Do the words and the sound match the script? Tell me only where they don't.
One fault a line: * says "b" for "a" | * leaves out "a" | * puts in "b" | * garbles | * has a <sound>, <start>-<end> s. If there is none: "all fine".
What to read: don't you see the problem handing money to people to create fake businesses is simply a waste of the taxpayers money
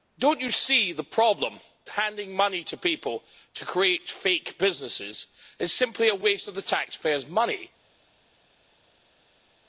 all fine